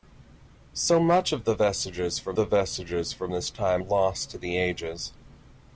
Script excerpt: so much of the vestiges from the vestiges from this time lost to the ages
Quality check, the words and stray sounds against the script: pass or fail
pass